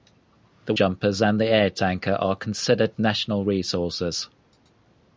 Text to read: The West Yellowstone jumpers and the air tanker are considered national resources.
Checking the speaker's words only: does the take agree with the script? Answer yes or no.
no